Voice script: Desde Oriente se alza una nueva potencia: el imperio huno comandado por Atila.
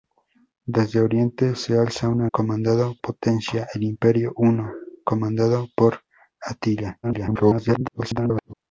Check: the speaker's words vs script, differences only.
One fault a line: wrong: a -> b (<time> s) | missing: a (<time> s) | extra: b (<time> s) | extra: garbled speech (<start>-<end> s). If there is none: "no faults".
wrong: nueva -> comandado (2.3 s)
extra: garbled speech (7.0-8.5 s)